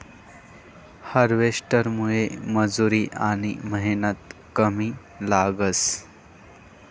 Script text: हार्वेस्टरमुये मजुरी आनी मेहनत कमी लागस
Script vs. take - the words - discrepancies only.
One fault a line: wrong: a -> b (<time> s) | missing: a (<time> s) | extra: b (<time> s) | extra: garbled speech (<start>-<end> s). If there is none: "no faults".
no faults